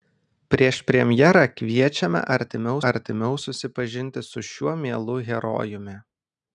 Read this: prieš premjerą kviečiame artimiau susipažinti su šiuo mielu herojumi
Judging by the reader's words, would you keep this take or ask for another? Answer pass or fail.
fail